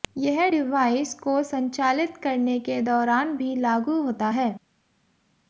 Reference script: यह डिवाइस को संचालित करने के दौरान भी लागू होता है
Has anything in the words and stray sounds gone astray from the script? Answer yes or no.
no